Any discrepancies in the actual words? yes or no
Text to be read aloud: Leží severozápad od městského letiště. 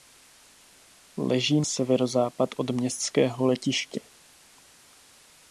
no